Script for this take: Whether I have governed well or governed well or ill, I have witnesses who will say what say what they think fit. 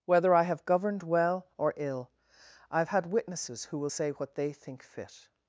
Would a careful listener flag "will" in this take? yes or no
no